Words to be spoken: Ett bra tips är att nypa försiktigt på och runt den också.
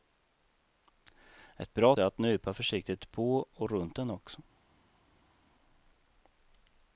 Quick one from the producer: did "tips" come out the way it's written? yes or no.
no